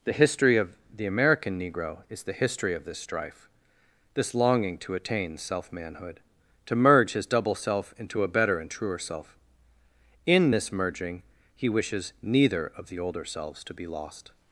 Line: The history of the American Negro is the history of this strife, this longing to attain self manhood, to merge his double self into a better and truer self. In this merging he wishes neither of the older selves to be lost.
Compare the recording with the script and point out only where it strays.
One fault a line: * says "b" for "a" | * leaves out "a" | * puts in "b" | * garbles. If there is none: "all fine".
all fine